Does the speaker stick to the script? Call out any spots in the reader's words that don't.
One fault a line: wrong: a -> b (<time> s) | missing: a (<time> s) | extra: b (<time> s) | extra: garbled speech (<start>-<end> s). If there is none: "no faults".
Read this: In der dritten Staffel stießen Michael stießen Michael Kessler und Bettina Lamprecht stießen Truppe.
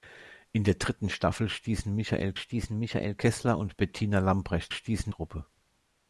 no faults